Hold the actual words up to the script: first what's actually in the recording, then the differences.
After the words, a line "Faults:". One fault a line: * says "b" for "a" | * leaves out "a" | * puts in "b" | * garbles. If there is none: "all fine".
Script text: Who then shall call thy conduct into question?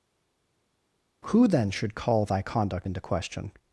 Who then should call thy conduct into question?
Faults:
* says "should" for "shall"